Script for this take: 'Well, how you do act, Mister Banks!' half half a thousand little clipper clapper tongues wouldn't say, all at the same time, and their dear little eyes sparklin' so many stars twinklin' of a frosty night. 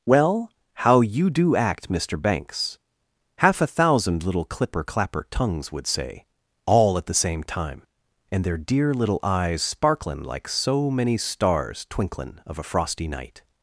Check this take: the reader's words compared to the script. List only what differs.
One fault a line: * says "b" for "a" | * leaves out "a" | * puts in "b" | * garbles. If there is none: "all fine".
* leaves out "half"
* says "would" for "wouldn't"
* puts in "like"